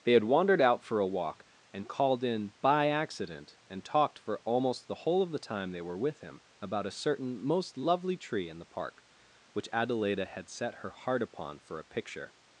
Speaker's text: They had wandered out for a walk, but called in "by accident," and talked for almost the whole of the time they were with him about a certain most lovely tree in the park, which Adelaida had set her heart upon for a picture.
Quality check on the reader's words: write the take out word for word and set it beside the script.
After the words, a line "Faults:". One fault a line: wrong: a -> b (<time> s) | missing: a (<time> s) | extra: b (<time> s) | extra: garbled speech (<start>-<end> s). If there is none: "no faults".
They had wandered out for a walk, and called in "by accident," and talked for almost the whole of the time they were with him about a certain most lovely tree in the park, which Adelaida had set her heart upon for a picture.
Faults:
wrong: but -> and (1.7 s)